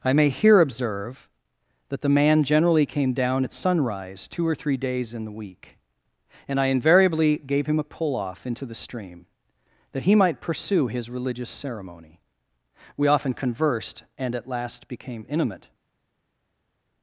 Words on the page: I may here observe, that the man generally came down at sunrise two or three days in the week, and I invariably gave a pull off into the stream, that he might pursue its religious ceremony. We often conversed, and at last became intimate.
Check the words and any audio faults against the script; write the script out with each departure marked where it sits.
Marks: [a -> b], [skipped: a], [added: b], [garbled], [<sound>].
I may here observe, that the man generally came down at sunrise two or three days in the week, and I invariably gave [added: him] a pull off into the stream, that he might pursue [its -> his] religious ceremony. We often conversed, and at last became intimate.